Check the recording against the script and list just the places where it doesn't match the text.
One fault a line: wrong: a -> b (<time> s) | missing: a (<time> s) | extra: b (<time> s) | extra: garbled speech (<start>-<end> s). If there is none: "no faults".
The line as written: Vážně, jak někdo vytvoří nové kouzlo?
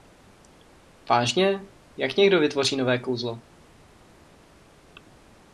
no faults